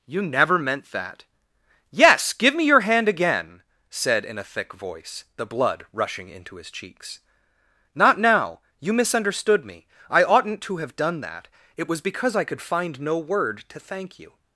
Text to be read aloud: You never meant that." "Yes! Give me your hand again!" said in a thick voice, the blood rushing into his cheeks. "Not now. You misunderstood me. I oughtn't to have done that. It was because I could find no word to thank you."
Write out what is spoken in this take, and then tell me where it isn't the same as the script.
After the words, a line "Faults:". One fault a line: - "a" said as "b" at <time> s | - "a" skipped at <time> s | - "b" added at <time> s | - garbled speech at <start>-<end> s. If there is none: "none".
You never meant that." "Yes! Give me your hand again!" said in a thick voice, the blood rushing into his cheeks. "Not now. You misunderstood me. I oughtn't to have done that. It was because I could find no word to thank you."
Faults:
none